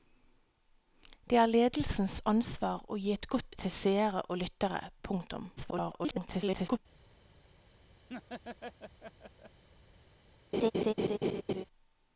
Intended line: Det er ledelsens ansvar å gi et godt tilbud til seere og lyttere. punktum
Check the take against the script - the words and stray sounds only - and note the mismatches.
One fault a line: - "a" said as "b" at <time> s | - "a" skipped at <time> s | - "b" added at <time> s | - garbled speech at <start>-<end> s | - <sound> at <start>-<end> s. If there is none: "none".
- "tilbud" skipped at 3.5 s
- garbled speech at 5.6-6.8 s
- laugh at 8.1-9.6 s
- laugh at 10.5-11.6 s